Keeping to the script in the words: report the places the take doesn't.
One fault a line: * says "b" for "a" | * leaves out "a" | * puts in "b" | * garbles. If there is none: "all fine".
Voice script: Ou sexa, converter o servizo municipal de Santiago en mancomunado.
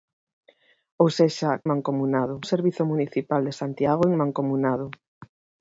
* says "mancomunado" for "converter"